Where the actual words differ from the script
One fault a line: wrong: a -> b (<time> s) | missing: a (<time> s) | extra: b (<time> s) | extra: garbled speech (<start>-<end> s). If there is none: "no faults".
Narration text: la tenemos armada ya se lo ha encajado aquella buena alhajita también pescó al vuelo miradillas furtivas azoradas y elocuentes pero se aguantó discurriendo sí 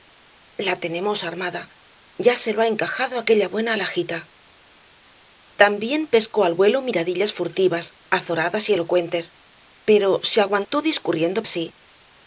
no faults